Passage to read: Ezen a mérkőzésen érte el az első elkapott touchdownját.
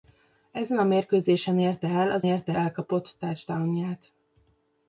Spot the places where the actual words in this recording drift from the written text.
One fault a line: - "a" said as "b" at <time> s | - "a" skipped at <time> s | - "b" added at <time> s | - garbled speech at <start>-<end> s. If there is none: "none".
- "első" said as "érte" at 2.2 s